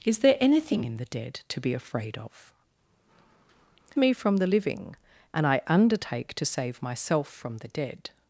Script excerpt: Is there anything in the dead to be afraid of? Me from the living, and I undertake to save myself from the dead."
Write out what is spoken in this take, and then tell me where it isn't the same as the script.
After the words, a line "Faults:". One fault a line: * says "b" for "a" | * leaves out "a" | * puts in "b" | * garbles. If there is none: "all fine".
Is there anything in the dead to be afraid of? Me from the living, and I undertake to save myself from the dead."
Faults:
all fine